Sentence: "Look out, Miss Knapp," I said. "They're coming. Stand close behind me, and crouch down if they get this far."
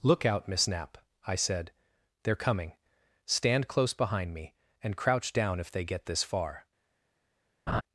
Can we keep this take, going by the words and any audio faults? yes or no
no